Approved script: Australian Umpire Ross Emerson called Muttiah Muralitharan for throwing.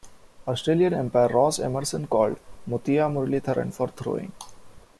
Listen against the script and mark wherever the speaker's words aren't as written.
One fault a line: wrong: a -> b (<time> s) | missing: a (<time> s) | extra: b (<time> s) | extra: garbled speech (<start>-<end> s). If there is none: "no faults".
no faults